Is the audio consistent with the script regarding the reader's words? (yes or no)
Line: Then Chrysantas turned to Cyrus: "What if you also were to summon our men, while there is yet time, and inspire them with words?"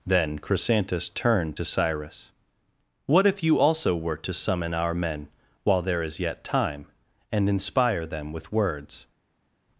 yes